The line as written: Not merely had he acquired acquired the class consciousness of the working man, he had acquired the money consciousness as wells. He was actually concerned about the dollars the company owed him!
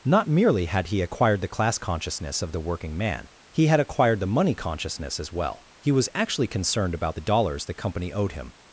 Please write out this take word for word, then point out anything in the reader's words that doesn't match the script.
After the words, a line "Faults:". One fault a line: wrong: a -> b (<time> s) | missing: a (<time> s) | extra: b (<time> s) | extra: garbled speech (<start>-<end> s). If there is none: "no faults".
Not merely had he acquired the class consciousness of the working man, he had acquired the money consciousness as well. He was actually concerned about the dollars the company owed him!
Faults:
missing: acquired (1.4 s)
wrong: wells -> well (5.3 s)